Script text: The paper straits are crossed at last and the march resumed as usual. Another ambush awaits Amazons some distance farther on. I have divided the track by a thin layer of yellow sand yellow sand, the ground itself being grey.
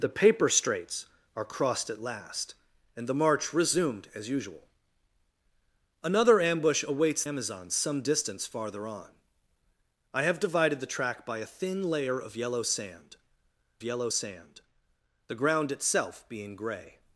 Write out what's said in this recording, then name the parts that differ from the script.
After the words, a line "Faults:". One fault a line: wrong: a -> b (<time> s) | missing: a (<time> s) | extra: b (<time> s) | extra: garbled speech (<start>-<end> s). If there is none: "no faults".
The paper straits are crossed at last and the march resumed as usual. Another ambush awaits Amazons some distance farther on. I have divided the track by a thin layer of yellow sand yellow sand, the ground itself being grey.
Faults:
no faults